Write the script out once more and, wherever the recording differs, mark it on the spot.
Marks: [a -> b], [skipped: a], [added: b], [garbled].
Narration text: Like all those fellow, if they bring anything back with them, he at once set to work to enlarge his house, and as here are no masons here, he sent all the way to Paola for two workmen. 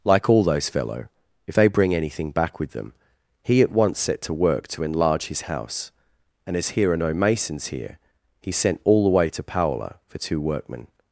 Like all those fellow, if they bring anything back with them, he at once set to work to enlarge his house, and as here are no masons here, he sent all the way to Paola for two workmen.